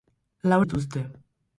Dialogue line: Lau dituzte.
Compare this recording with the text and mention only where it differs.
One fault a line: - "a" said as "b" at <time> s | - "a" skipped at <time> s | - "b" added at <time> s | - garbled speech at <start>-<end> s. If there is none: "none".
none